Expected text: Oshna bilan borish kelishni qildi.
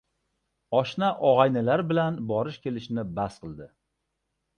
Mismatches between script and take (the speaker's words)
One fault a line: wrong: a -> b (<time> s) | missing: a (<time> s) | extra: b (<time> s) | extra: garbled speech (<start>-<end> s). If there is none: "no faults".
extra: og‘aynilar (1.3 s)
extra: bas (3.2 s)